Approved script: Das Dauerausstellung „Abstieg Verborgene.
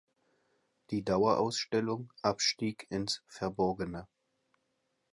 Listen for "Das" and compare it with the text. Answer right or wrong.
wrong